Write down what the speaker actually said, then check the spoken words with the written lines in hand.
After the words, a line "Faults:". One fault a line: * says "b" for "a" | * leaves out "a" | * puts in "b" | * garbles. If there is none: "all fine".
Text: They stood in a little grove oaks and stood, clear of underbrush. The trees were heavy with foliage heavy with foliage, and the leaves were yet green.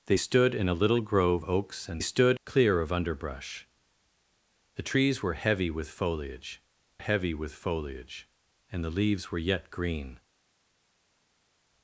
They stood in a little grove oaks and stood, clear of underbrush. The trees were heavy with foliage heavy with foliage, and the leaves were yet green.
Faults:
all fine